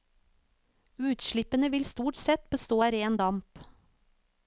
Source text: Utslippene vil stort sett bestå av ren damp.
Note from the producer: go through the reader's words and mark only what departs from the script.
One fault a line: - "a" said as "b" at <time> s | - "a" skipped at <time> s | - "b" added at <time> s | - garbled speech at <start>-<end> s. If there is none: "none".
none